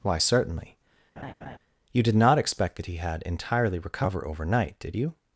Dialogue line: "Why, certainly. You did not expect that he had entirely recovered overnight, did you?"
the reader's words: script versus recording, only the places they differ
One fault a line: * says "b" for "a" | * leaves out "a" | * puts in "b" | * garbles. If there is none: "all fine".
* says "recover" for "recovered"